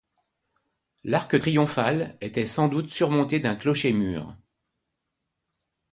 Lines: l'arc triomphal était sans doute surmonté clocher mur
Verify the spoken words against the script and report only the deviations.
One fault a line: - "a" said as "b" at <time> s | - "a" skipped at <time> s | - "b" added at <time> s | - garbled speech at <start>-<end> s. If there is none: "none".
- "d'un" added at 3.4 s